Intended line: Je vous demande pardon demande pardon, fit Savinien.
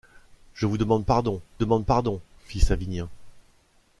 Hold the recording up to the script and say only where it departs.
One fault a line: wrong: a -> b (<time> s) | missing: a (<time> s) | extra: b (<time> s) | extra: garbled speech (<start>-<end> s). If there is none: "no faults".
no faults